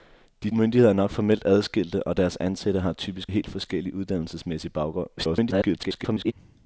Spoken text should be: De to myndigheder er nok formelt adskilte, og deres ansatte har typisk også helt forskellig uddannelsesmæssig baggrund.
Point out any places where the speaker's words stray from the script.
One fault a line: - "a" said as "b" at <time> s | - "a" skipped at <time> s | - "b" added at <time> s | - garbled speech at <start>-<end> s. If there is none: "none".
- "to" skipped at 0.5 s
- "også" skipped at 3.3 s
- garbled speech at 5.2-6.3 s